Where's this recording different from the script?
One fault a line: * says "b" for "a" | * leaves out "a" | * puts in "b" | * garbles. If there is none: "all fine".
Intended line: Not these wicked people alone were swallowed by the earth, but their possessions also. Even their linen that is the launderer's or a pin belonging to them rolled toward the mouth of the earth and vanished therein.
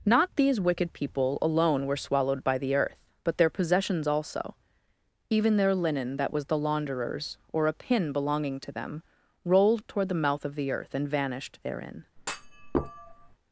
* says "was" for "is"